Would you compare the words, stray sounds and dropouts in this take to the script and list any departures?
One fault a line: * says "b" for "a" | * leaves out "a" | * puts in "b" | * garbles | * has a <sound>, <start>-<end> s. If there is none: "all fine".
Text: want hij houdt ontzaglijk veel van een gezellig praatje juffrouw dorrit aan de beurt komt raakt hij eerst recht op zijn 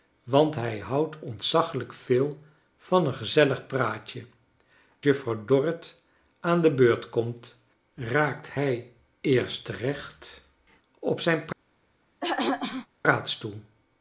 * has a throat clearing, 12.2-12.9 s